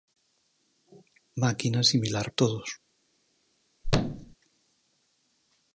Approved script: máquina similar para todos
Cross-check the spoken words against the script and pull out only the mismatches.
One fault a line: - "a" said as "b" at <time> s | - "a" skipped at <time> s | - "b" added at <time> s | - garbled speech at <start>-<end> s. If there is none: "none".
- "para" skipped at 2.3 s